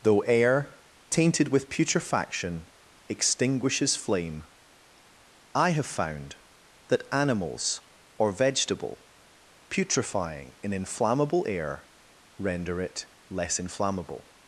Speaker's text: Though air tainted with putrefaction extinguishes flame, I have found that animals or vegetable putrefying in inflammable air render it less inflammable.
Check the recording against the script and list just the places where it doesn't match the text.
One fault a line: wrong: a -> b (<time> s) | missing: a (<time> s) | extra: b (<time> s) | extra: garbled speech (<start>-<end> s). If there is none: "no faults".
no faults